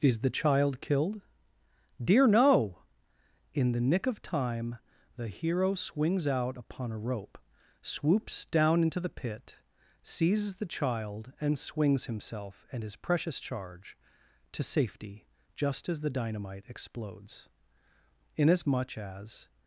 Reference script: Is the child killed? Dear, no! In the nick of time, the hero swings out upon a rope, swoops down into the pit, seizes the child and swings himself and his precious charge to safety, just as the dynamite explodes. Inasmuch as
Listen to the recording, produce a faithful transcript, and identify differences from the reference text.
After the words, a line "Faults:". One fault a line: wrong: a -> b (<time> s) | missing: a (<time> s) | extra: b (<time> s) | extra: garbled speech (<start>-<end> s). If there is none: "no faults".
Is the child killed? Dear, no! In the nick of time, the hero swings out upon a rope, swoops down into the pit, seizes the child and swings himself and his precious charge to safety, just as the dynamite explodes. Inasmuch as
Faults:
no faults